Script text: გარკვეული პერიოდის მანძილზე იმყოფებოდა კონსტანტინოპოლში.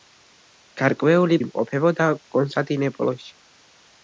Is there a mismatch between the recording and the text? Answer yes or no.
yes